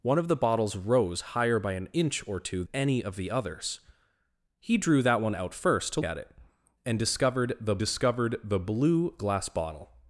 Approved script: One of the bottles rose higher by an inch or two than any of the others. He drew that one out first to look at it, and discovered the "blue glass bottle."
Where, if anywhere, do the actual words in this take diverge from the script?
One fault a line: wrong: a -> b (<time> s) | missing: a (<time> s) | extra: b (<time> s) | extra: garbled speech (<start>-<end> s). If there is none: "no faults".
missing: than (2.6 s)
missing: look (6.0 s)
extra: discovered the (7.8 s)